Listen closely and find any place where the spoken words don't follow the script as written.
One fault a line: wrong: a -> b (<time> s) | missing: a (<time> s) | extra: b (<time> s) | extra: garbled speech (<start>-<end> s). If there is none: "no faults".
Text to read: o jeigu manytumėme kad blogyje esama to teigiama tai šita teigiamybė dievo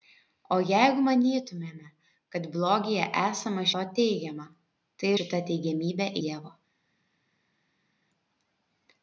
no faults